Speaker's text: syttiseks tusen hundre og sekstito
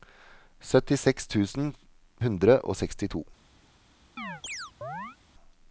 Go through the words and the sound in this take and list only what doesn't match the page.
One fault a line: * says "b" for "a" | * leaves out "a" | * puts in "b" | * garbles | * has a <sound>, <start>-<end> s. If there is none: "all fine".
* has a chirp, 4.2-5.2 s